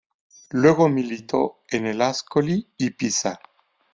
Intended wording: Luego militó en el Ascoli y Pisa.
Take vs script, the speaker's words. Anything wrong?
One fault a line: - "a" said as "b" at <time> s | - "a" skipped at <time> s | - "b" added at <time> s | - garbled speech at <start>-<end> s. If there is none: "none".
none